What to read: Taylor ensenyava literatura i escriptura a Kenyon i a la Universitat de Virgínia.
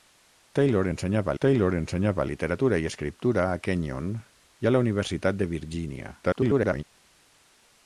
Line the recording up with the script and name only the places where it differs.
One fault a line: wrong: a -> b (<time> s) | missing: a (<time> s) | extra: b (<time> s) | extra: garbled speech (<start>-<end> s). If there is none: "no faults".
extra: taylor ensenyava (1.5 s)
extra: garbled speech (6.2-6.8 s)